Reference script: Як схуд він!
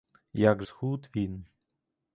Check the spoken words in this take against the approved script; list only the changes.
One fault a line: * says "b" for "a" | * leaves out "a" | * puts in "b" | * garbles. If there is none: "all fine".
all fine